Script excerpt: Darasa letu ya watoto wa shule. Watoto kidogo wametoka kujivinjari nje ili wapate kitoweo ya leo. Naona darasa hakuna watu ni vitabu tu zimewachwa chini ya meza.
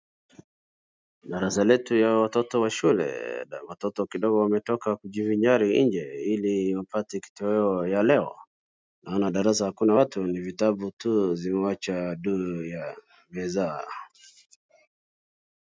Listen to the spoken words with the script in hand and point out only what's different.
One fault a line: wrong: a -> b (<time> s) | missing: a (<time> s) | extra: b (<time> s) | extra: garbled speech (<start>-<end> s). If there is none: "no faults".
wrong: chini -> juu (12.1 s)